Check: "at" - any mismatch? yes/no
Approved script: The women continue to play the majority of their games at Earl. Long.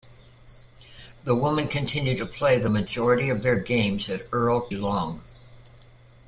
no